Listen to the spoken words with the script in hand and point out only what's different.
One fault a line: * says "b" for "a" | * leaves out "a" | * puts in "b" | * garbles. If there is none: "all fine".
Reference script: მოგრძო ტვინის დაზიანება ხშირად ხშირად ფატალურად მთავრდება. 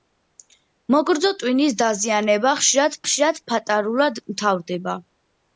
all fine